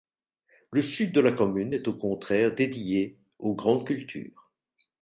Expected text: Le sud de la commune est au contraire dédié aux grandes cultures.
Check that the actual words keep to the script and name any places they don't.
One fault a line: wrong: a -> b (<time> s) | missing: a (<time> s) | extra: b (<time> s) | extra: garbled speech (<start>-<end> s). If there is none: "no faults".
no faults